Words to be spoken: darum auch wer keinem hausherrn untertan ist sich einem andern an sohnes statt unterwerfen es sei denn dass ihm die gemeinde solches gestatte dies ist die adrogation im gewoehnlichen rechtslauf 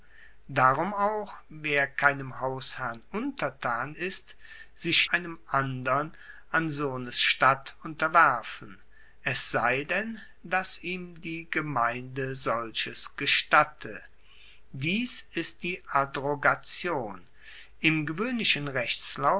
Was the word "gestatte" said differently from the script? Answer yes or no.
no